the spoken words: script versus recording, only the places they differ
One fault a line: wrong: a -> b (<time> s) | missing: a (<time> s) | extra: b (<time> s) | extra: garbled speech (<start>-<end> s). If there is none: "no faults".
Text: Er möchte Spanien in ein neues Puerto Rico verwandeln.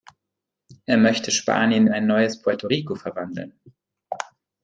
no faults